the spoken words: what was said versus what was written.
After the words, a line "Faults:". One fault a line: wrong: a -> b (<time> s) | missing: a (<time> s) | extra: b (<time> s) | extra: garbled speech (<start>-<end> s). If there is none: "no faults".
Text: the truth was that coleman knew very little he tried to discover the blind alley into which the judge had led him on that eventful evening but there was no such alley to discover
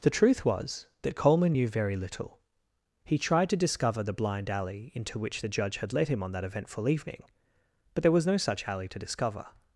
the truth was that coleman knew very little he tried to discover the blind alley into which the judge had led him on that eventful evening but there was no such alley to discover
Faults:
no faults